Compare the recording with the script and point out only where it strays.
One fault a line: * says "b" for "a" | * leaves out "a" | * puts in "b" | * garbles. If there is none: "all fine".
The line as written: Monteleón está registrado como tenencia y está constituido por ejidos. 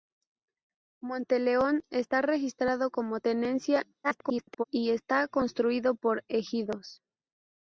* garbles